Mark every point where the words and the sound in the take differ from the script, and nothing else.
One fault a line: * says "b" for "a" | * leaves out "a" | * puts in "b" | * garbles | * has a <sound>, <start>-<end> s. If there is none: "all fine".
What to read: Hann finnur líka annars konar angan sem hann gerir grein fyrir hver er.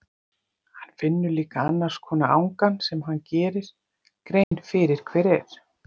* has a dropout, 4.4-4.5 s